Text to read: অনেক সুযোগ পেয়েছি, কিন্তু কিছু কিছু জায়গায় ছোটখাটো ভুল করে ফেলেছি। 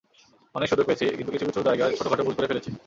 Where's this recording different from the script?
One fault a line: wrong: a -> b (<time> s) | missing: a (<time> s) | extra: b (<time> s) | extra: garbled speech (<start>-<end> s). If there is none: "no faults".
no faults